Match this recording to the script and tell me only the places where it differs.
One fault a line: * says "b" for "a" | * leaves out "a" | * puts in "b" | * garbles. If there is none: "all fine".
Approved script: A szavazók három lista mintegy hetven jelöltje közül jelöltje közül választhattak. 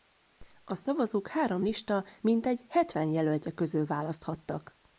* leaves out "jelöltje közül"